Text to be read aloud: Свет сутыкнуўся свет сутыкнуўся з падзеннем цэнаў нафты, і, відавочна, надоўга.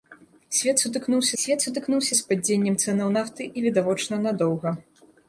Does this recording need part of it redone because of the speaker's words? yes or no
no